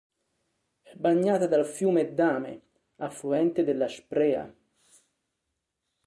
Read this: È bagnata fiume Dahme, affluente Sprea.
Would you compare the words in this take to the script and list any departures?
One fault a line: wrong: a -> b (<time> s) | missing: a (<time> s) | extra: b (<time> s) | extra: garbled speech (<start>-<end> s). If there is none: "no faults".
extra: dal (1.4 s)
extra: della (3.6 s)